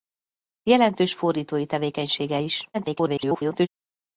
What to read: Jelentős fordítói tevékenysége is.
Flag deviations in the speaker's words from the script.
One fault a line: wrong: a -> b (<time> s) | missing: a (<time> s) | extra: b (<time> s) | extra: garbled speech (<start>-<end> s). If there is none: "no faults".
extra: garbled speech (2.7-3.7 s)